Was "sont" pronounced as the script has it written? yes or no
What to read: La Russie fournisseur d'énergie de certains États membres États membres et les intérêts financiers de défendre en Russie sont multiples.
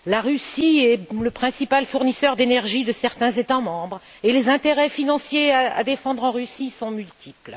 yes